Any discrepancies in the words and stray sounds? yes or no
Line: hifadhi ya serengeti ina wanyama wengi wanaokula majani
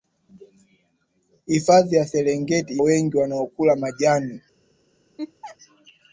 yes